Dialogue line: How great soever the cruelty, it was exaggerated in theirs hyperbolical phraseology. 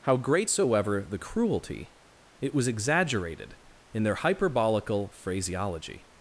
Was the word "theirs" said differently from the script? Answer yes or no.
yes